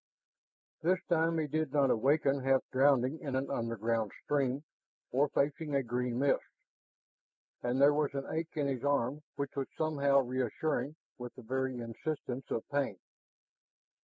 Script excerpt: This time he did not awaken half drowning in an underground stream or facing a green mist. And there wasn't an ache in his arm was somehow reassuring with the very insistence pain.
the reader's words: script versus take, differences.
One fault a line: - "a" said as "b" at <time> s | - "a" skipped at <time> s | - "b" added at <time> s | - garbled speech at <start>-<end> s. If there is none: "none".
- "wasn't" said as "was" at 7.9 s
- "which" added at 9.3 s
- "of" added at 12.5 s